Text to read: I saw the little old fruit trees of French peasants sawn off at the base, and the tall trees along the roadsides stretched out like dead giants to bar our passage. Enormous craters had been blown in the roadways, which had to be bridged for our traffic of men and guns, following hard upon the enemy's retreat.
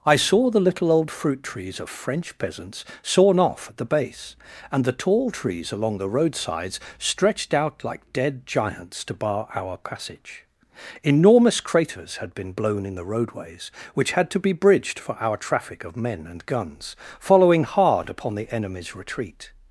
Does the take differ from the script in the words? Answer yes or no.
no